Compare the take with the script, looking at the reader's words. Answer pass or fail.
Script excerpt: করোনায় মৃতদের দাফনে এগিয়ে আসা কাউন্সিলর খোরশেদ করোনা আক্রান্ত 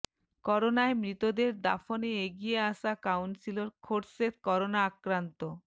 pass